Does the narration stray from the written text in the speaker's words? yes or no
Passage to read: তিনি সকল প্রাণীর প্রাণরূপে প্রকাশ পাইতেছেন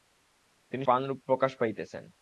yes